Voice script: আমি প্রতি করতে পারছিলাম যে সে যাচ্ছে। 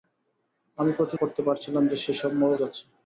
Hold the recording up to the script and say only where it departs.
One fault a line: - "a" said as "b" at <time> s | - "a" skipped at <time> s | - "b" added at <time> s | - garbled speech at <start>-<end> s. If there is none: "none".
none